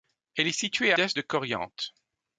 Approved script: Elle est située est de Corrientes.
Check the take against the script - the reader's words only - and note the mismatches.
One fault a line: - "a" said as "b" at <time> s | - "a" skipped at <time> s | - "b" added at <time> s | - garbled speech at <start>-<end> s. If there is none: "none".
none